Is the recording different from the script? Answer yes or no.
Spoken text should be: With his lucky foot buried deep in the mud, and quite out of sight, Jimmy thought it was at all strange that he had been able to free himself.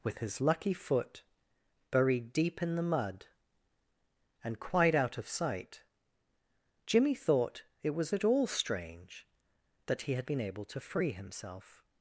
no